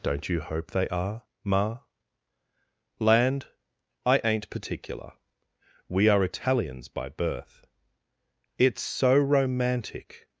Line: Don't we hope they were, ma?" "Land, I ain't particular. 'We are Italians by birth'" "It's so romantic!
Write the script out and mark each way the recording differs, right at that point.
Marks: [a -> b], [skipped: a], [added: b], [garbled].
Don't [we -> you] hope they [were, -> are] ma?" "Land, I ain't particular. 'We are Italians by birth'" "It's so romantic!